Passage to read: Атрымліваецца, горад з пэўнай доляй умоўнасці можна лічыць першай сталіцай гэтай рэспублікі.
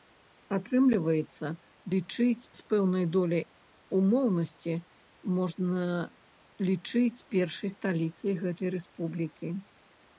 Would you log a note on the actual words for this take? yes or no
yes